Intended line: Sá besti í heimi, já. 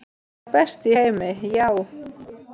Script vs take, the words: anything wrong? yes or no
no